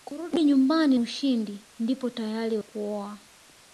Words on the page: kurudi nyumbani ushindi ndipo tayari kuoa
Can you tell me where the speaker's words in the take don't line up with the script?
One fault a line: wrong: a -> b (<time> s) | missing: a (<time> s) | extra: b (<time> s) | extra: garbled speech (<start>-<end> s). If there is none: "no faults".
no faults